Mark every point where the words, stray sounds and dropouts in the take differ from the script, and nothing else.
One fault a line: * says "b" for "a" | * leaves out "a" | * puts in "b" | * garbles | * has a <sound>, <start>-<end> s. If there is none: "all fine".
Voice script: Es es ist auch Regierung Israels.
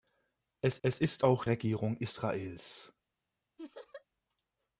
* has a laugh, 3.6-4.0 s